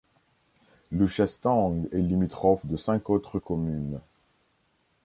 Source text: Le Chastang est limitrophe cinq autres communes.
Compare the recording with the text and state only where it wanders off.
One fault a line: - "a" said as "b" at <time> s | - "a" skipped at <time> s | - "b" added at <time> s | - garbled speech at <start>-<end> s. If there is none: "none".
- "de" added at 2.6 s